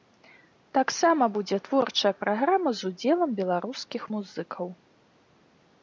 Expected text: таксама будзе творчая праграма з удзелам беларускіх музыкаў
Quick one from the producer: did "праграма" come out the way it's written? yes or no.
yes